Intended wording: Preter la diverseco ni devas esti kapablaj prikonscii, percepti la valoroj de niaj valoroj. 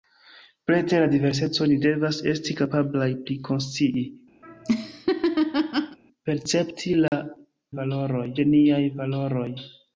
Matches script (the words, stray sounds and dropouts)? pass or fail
fail